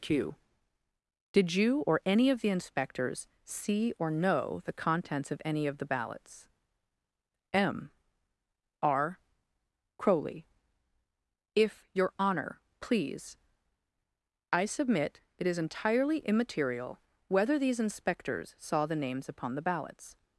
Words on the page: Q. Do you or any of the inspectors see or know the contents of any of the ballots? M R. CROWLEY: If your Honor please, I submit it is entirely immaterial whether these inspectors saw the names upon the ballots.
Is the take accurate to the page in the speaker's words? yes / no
no